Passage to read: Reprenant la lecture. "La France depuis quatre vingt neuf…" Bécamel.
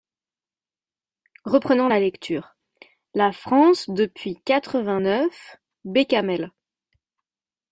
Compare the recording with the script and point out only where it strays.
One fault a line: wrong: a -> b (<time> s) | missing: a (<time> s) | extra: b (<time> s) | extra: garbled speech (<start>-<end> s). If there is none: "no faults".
no faults